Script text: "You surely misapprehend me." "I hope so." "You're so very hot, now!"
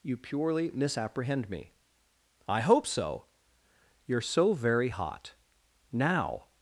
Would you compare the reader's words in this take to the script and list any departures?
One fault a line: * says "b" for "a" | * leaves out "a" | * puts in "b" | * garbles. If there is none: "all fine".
* says "purely" for "surely"